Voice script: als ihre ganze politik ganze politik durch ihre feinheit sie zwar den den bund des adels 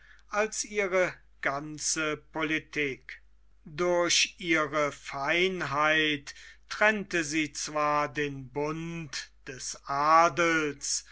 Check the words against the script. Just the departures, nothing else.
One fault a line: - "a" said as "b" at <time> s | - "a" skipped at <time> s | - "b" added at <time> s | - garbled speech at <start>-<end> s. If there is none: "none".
- "ganze politik" skipped at 3.2 s
- "trennte" added at 6.7 s
- "den" skipped at 8.5 s